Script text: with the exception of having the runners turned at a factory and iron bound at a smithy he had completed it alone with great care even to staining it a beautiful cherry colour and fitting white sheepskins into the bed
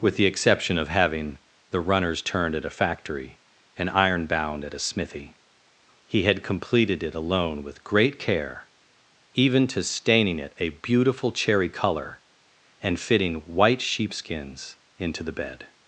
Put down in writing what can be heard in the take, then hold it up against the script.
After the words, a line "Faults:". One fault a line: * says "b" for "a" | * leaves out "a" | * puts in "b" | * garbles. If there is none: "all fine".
with the exception of having the runners turned at a factory and iron bound at a smithy he had completed it alone with great care even to staining it a beautiful cherry colour and fitting white sheepskins into the bed
Faults:
all fine